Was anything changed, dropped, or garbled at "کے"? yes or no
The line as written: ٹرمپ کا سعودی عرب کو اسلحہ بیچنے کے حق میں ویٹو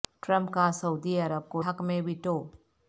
yes